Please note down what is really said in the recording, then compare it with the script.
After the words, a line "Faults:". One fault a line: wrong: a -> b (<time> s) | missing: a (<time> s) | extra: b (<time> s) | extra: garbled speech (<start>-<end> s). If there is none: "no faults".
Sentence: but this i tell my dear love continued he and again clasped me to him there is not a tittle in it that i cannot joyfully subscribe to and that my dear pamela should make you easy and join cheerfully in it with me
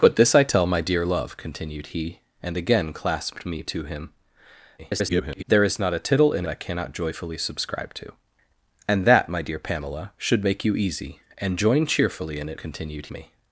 but this i tell my dear love continued he and again clasped me to him [garbled] there is not a tittle in i cannot joyfully subscribe to and that my dear pamela should make you easy and join cheerfully in it continued me
Faults:
extra: garbled speech (4.8-5.4 s)
missing: it that (6.5 s)
wrong: with -> continued (12.6 s)